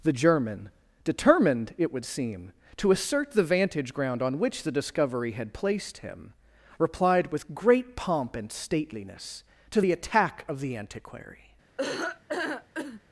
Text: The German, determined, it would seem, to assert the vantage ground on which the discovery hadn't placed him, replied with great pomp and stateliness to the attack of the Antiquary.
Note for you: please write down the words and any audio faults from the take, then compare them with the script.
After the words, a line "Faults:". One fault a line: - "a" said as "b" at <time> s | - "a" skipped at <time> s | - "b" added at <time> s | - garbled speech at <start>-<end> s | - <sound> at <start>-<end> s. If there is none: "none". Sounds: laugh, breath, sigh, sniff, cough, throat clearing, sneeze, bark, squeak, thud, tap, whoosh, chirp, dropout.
The German, determined, it would seem, to assert the vantage ground on which the discovery had placed him, replied with great pomp and stateliness to the attack of the Antiquary.
Faults:
- "hadn't" said as "had" at 5.3 s
- laugh at 11.8-13.0 s